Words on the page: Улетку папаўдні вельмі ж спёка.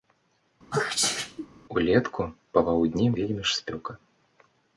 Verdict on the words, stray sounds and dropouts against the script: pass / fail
fail